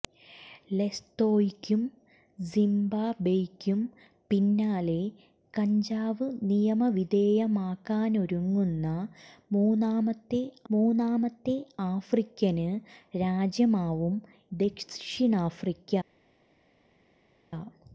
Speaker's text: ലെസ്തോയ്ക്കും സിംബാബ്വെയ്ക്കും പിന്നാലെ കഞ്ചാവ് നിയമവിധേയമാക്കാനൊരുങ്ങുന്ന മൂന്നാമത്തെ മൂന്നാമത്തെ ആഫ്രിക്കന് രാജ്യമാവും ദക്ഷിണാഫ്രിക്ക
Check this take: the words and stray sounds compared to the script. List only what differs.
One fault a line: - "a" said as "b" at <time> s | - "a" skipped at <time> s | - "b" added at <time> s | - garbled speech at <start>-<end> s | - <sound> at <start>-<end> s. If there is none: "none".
none